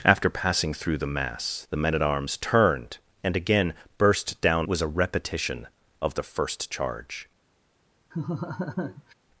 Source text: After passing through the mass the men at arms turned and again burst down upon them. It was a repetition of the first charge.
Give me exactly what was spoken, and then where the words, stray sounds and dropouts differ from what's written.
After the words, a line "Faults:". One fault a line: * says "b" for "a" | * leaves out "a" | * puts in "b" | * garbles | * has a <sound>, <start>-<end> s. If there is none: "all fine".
After passing through the mass the men at arms turned and again burst down was a repetition of the first charge.
Faults:
* leaves out "upon them It"
* has a laugh, 8.1-9.1 s